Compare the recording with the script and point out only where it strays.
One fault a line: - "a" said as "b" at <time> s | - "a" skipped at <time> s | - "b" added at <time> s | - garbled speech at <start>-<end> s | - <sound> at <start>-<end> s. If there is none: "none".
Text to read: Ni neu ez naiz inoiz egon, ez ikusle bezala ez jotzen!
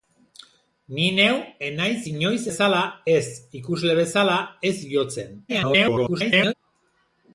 - "egon" said as "bezala" at 2.5 s
- garbled speech at 5.5-6.5 s